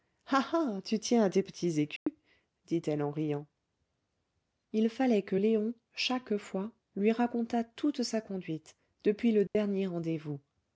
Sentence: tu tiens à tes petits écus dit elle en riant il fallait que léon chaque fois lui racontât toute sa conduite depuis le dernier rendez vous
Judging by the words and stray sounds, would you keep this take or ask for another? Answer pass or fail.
fail